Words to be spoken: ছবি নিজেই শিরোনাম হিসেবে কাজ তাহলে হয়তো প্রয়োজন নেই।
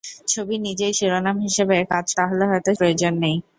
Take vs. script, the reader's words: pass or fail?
pass